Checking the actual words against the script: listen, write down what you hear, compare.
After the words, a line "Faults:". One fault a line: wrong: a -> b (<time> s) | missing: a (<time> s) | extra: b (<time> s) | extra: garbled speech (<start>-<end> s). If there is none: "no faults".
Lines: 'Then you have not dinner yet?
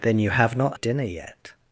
'Then you have not dinner yet?
Faults:
no faults